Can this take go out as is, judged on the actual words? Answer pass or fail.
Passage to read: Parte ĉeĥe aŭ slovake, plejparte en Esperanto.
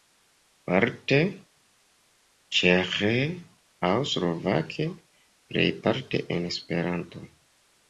pass